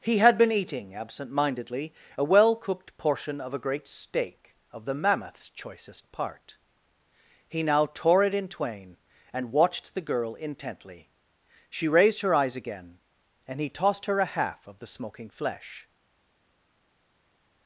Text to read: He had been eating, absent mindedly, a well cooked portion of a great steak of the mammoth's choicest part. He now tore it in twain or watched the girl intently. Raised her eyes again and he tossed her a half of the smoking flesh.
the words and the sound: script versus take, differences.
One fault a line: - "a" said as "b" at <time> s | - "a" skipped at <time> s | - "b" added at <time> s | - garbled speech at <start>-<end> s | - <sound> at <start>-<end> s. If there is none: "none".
- "or" said as "and" at 9.3 s
- "She" added at 11.7 s